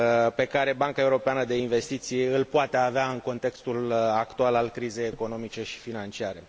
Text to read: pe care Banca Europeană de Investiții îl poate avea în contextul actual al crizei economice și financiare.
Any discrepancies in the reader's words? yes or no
no